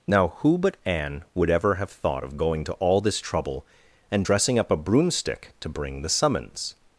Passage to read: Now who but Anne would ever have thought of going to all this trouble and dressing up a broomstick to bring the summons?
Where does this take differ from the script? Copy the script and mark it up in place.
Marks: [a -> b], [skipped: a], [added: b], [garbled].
Now who but Anne would ever have thought of going to all this trouble and dressing up a broomstick to bring the summons?